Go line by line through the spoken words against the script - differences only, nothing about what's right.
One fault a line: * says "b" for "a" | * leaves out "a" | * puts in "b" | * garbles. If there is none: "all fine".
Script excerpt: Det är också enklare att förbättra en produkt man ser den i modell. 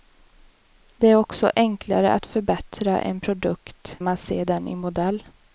all fine